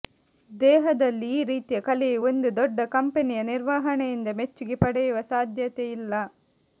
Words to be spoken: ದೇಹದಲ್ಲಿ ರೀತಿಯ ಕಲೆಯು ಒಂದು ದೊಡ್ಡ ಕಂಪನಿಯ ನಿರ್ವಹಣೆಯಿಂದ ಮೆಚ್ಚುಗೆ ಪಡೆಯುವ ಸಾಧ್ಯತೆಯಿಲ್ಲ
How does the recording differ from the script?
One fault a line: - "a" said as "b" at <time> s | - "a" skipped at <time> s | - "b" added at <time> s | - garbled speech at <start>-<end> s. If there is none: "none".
- "ಈ" added at 1.3 s